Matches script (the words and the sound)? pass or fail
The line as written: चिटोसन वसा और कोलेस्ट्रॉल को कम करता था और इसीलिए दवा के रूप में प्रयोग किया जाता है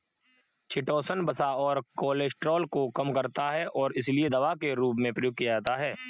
fail